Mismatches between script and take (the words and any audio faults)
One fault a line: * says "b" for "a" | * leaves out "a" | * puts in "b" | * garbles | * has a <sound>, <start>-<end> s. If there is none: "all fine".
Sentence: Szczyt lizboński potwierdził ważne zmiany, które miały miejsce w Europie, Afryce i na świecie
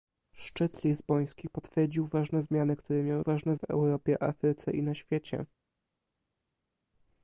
* says "ważne" for "miejsce"